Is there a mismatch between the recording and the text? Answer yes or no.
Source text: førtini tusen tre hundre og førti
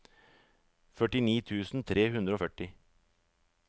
no